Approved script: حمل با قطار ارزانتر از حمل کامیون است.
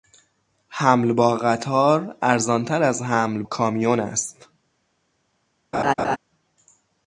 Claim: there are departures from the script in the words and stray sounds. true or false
true